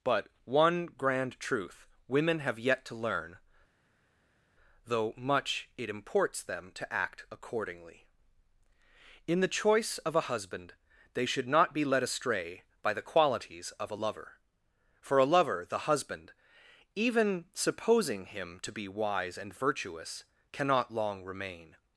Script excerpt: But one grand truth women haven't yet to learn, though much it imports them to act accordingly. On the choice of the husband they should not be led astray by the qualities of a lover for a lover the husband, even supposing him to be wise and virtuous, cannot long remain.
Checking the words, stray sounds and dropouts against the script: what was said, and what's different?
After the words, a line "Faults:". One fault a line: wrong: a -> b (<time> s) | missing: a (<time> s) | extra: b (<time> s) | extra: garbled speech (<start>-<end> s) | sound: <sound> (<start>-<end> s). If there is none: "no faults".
But one grand truth women have yet to learn, though much it imports them to act accordingly. In the choice of a husband they should not be led astray by the qualities of a lover for a lover the husband, even supposing him to be wise and virtuous, cannot long remain.
Faults:
wrong: haven't -> have (2.4 s)
wrong: On -> In (9.3 s)
wrong: the -> a (10.2 s)